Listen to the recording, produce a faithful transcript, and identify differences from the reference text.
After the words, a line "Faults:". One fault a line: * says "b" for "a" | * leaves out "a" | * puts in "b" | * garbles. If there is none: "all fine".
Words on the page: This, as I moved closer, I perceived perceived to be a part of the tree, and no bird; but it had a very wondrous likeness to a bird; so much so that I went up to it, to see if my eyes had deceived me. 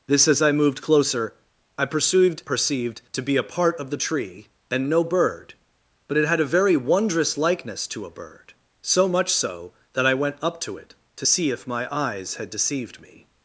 This, as I moved closer, I perceived perceived to be a part of the tree, and no bird; but it had a very wondrous likeness to a bird; so much so that I went up to it, to see if my eyes had deceived me.
Faults:
all fine